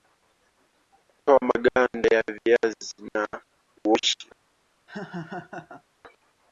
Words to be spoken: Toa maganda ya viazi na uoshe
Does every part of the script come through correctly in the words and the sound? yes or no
no